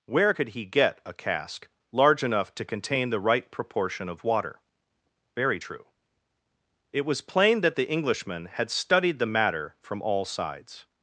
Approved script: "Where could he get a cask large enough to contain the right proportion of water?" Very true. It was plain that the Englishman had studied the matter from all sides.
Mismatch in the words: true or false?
false